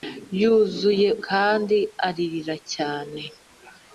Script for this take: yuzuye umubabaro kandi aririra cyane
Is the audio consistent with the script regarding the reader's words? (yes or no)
no